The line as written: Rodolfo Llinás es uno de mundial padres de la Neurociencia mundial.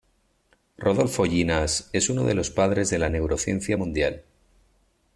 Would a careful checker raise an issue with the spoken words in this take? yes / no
yes